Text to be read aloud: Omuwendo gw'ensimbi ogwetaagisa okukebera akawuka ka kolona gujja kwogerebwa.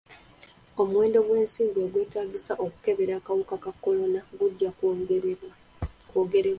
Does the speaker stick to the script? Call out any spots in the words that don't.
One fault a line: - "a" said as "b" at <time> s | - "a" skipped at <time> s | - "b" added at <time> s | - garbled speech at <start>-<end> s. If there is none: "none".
none